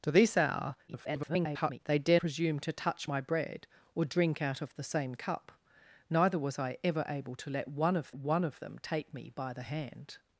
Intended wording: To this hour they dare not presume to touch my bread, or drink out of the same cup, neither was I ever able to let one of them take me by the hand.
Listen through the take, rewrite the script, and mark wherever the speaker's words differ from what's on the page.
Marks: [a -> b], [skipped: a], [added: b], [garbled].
To this hour [garbled] they dare [skipped: not] presume to touch my bread, or drink out of the same cup, neither was I ever able to let one of [added: one of] them take me by the hand.